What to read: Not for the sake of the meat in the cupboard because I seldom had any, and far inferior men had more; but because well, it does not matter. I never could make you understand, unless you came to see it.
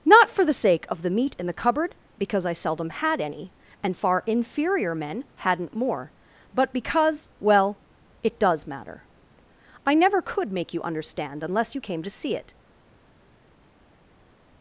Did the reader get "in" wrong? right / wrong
right